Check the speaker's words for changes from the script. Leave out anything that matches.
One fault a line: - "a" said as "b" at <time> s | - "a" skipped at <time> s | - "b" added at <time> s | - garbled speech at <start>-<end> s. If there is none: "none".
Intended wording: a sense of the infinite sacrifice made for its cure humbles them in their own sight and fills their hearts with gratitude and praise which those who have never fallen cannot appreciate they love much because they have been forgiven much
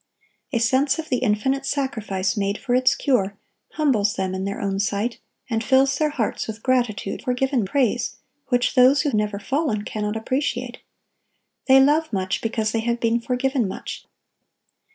- "and" said as "forgiven" at 7.2 s
- "have" skipped at 9.1 s